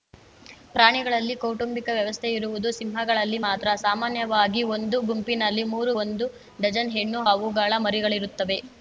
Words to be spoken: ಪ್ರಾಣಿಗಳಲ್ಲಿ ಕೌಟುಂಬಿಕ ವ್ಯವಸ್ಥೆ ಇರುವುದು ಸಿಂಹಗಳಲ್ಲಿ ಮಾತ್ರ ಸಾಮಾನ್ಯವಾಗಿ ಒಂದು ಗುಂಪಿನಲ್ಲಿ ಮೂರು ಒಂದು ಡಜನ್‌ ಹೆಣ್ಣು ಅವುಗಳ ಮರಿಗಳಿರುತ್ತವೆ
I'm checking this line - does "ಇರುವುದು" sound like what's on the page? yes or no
yes